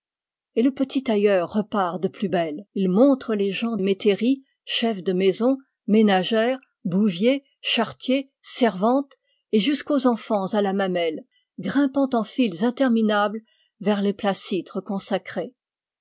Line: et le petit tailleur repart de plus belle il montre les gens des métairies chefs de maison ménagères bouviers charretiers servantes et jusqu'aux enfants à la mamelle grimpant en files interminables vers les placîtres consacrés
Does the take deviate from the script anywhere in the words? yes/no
yes